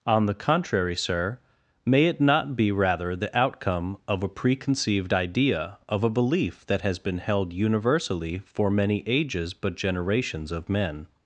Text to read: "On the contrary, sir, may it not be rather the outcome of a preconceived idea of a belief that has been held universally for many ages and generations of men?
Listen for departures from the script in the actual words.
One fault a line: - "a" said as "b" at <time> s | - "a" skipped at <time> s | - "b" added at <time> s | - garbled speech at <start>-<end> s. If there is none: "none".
- "and" said as "but" at 9.5 s